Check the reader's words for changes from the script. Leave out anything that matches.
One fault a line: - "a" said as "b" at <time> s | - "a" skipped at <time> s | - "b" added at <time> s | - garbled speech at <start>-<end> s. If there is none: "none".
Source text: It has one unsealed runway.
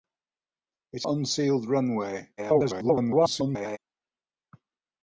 - "has one" skipped at 1.0 s
- garbled speech at 2.4-3.8 s